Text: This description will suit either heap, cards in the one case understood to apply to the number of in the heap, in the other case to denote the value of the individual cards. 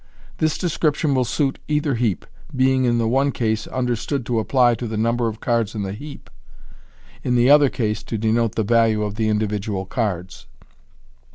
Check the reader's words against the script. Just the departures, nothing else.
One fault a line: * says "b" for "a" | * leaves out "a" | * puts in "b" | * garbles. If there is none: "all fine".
* says "being" for "cards"
* puts in "cards"